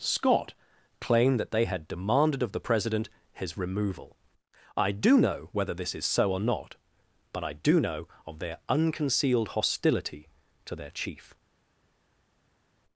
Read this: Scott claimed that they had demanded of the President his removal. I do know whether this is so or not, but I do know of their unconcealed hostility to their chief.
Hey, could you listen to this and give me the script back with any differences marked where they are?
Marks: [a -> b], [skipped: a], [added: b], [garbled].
Scott claimed that they had demanded of the President his removal. I do know whether this is so or not, but I do know of their unconcealed hostility to their chief.